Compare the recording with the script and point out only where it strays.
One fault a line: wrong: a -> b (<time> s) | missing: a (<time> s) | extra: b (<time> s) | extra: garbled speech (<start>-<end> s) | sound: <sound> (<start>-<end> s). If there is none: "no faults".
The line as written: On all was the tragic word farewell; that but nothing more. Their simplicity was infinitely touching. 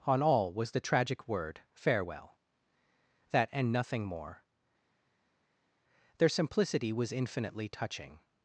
wrong: but -> and (3.5 s)